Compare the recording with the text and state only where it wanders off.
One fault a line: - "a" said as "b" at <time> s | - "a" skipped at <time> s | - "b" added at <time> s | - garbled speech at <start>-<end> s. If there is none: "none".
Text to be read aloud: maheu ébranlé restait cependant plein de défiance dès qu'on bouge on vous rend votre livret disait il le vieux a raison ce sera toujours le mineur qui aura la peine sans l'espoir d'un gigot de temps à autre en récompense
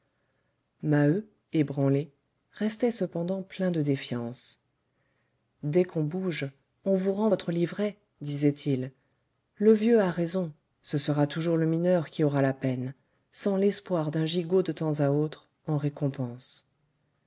none